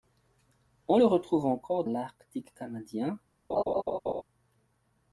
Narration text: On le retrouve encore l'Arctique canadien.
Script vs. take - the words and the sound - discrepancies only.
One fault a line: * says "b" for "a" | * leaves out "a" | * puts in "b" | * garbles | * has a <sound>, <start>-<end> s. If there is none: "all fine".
* has a laugh, 3.5-4.2 s